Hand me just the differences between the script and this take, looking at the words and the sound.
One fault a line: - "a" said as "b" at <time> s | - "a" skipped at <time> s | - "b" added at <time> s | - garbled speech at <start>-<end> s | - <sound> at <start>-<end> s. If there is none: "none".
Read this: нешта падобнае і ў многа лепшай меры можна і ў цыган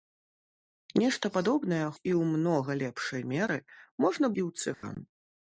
- dropout at 4.7-4.8 s